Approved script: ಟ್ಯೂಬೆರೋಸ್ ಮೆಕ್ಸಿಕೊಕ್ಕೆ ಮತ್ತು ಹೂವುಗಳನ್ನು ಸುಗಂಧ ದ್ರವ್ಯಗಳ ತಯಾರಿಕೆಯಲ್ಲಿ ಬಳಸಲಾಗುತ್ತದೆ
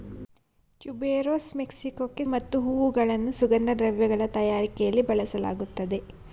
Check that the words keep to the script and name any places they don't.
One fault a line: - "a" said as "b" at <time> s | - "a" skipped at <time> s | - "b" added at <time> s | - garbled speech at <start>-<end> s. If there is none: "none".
none